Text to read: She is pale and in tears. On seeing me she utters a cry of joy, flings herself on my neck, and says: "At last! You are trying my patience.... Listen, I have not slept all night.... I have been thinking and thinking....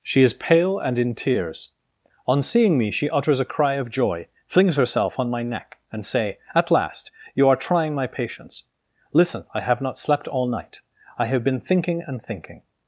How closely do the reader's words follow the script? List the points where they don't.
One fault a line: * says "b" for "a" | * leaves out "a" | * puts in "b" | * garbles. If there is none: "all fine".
* says "say" for "says"